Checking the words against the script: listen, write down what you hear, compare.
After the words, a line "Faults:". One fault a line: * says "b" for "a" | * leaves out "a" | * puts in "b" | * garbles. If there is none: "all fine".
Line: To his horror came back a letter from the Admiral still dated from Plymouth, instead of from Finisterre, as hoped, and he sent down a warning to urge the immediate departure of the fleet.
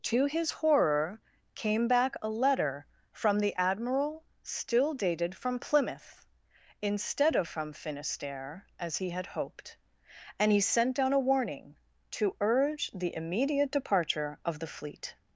To his horror came back a letter from the Admiral still dated from Plymouth, instead of from Finisterre, as he had hoped, and he sent down a warning to urge the immediate departure of the fleet.
Faults:
* puts in "he had"